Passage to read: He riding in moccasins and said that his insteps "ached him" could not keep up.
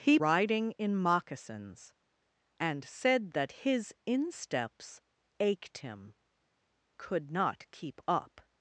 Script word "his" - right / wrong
right